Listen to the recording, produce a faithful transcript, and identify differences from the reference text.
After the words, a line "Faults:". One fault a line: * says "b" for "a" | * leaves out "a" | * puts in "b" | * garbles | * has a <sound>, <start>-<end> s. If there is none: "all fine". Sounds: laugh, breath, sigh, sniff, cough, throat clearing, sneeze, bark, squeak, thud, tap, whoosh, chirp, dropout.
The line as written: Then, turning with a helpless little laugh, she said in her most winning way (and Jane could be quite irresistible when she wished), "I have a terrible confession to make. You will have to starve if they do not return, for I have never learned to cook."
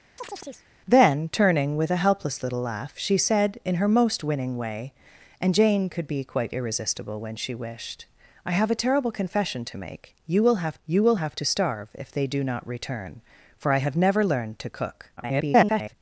Then, turning with a helpless little laugh, she said in her most winning way (and Jane could be quite irresistible when she wished), "I have a terrible confession to make. You will have you will have to starve if they do not return, for I have never learned to cook." [garbled]
Faults:
* has a chirp, 0.2-0.7 s
* puts in "you will have"
* garbles